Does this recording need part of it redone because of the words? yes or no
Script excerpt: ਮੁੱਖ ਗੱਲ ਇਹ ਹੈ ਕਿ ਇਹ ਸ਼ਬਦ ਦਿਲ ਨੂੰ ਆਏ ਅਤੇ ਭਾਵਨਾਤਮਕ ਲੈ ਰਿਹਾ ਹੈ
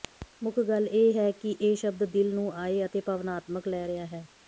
no